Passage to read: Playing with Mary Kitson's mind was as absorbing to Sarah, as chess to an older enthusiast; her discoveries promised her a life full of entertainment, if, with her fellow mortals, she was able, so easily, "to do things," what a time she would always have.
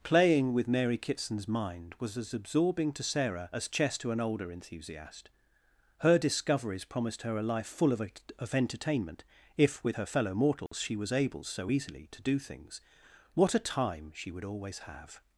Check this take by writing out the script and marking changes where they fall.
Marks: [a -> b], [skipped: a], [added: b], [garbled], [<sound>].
Playing with Mary Kitson's mind was as absorbing to Sarah, as chess to an older enthusiast; her discoveries promised her a life full of [added: of] entertainment, if, with her fellow mortals, [dropout] she was able, so easily, "to do things," what a time she would always have.